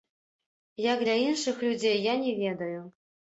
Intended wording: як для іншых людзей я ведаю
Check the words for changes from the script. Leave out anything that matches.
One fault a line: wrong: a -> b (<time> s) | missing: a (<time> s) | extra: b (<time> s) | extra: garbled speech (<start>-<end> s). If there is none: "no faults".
extra: не (2.2 s)